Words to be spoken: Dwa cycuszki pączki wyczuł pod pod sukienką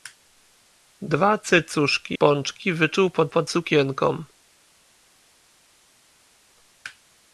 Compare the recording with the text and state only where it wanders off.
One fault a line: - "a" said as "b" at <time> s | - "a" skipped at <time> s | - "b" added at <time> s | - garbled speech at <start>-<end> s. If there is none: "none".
none